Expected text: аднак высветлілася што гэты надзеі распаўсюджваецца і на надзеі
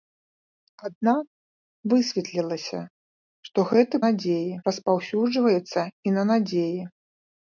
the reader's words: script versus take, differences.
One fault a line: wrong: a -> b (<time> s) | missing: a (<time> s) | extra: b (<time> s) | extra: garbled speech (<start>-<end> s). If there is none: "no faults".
no faults